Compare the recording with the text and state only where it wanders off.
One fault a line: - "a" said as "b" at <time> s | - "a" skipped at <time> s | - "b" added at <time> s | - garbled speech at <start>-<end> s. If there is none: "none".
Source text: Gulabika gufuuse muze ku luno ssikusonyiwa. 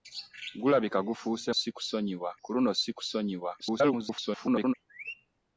- "muze" said as "ssikusonyiwa" at 1.6 s
- garbled speech at 3.6-4.7 s